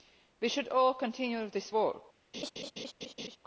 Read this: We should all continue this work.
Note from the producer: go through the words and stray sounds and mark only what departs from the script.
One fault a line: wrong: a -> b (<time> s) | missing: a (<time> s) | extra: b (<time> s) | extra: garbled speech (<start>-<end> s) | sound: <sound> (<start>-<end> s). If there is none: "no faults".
sound: laugh (2.3-3.4 s)